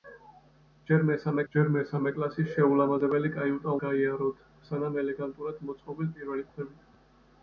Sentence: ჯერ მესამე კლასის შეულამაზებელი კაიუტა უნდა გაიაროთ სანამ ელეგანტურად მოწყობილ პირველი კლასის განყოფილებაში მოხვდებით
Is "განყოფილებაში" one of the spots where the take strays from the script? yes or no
yes